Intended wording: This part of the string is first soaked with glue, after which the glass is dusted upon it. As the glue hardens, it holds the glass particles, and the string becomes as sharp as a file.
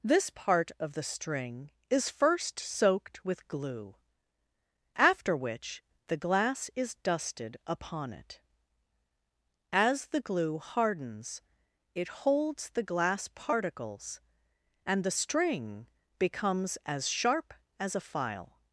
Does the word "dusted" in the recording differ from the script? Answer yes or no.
no